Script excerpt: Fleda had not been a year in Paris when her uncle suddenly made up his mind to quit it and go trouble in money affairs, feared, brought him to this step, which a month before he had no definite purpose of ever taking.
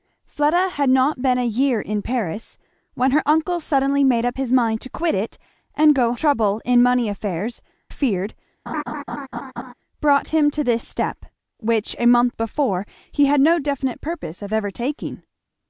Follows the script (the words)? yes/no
yes